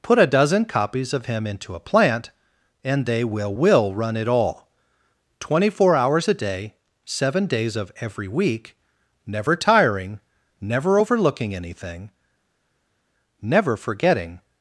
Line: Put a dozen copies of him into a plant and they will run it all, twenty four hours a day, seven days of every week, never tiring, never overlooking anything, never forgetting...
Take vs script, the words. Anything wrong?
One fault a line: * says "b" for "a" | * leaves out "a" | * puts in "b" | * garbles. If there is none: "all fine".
* puts in "will"